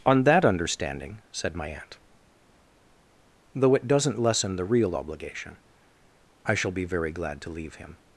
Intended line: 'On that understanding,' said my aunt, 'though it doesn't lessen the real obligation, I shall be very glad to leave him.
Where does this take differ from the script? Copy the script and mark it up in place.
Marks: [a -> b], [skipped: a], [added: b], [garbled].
'On that understanding,' said my aunt, 'though it doesn't lessen the real obligation, I shall be very glad to leave him.